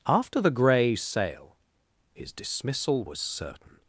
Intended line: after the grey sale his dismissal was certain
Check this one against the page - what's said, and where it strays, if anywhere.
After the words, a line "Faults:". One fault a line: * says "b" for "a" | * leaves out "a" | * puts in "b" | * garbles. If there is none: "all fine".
after the grey sale his dismissal was certain
Faults:
all fine